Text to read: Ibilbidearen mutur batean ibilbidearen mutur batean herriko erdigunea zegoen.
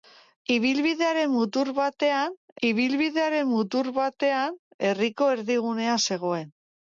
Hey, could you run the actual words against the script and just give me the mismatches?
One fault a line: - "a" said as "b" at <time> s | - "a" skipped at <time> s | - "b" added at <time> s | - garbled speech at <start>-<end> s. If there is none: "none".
none